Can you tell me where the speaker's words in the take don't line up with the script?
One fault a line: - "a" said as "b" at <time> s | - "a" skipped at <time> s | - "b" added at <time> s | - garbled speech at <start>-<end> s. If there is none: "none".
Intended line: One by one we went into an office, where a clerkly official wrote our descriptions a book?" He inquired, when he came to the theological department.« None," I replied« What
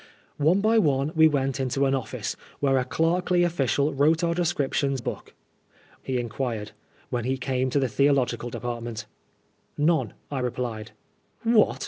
none